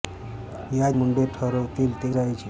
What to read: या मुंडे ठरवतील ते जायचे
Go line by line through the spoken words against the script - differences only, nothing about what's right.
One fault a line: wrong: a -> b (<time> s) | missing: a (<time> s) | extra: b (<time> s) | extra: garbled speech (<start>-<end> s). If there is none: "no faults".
no faults